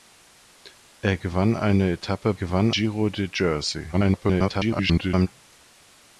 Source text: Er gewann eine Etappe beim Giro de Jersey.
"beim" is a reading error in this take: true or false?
true